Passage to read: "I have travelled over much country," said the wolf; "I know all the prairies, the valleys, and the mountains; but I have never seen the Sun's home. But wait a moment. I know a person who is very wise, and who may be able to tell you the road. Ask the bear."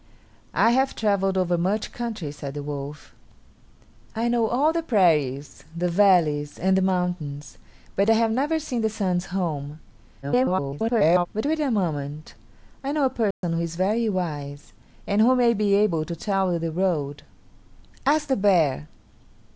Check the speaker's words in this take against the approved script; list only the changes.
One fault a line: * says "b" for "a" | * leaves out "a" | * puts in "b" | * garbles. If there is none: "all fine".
* garbles